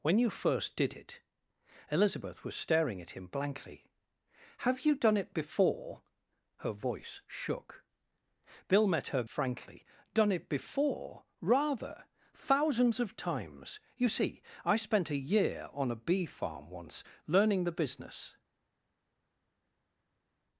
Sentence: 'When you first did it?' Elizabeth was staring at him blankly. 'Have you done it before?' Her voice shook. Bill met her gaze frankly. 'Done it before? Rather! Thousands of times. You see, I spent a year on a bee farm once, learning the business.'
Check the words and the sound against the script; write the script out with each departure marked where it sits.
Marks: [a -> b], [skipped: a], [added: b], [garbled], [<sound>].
'When you first did it?' Elizabeth was staring at him blankly. 'Have you done it before?' Her voice shook. Bill met her [skipped: gaze] frankly. 'Done it before? Rather! Thousands of times. You see, I spent a year on a bee farm once, learning the business.'